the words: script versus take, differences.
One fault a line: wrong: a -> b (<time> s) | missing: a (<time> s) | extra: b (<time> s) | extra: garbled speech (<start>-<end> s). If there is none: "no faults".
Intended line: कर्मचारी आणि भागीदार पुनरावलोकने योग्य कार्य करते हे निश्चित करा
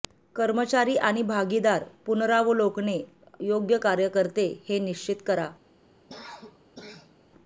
no faults